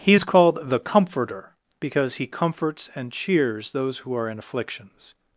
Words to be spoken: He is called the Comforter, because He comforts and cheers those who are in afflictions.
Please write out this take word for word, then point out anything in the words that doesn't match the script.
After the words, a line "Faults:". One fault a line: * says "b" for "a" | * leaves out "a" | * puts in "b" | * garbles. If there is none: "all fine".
He is called the Comforter, because He comforts and cheers those who are in afflictions.
Faults:
all fine